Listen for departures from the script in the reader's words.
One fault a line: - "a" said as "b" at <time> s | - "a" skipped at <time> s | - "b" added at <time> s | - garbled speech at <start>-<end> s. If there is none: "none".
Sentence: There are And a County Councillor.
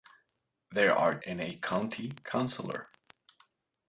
none